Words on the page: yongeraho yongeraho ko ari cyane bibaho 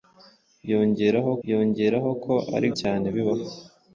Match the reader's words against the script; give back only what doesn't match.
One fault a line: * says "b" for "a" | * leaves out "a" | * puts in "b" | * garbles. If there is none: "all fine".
all fine